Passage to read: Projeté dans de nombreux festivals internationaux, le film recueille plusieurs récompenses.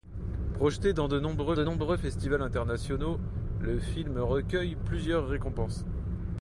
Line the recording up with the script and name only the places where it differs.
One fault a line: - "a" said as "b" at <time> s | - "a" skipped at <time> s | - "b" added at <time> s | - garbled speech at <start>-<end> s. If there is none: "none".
- "de nombreux" added at 1.5 s